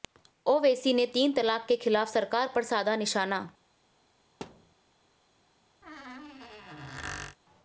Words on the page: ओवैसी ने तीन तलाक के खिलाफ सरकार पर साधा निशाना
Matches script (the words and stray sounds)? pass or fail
fail